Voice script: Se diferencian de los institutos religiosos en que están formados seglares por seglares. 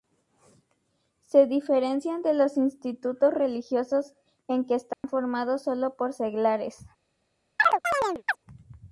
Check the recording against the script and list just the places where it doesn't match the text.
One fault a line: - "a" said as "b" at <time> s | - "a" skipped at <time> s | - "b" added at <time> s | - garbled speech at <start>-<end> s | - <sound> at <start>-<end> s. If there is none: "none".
- dropout at 4.9-5.0 s
- "seglares" said as "solo" at 5.6 s
- chirp at 7.6-8.4 s